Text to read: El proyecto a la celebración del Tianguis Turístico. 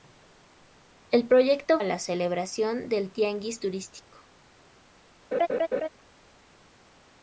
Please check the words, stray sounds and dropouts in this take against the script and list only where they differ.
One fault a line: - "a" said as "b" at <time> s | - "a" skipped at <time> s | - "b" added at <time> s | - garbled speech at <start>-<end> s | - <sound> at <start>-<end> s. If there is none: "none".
- laugh at 5.3-5.9 s